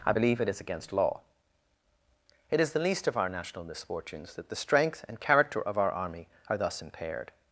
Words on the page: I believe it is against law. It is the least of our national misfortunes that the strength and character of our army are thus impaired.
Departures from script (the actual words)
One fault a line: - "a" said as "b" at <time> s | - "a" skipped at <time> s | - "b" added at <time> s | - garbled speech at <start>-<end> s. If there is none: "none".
none